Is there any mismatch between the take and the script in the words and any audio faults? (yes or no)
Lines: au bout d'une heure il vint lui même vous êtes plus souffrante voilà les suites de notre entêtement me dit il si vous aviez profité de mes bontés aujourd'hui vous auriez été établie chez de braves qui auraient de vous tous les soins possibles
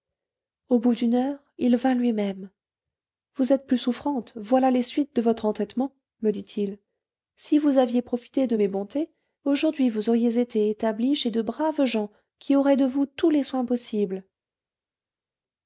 yes